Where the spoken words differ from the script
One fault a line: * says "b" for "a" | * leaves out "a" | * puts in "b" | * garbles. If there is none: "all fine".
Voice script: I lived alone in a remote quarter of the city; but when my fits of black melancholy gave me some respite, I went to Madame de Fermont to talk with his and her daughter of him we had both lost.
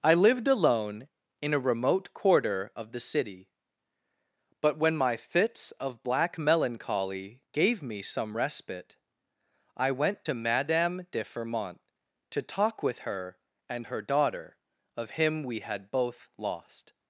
* says "her" for "his"